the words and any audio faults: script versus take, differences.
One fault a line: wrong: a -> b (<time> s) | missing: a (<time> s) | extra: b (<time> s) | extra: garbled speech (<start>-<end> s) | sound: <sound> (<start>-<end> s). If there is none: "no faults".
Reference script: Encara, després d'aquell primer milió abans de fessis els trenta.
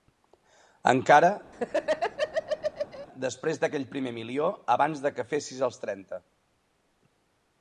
sound: laugh (1.5-3.1 s)
extra: que (5.2 s)